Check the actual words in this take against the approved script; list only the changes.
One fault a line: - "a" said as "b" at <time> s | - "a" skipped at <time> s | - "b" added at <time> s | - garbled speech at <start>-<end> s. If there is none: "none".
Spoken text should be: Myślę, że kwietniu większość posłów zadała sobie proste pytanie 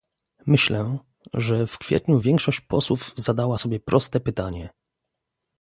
- "w" added at 1.7 s